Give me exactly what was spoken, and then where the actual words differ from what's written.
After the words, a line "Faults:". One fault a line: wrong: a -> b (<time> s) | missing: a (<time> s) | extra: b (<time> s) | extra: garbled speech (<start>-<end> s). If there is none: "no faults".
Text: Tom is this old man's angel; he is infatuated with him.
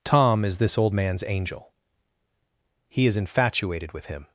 Tom is this old man's angel; he is infatuated with him.
Faults:
no faults